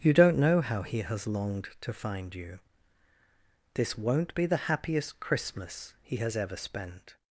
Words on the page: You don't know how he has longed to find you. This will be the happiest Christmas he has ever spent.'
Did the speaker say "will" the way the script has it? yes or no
no